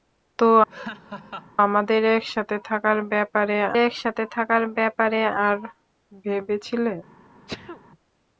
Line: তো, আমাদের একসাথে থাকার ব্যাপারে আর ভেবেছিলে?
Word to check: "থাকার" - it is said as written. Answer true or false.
true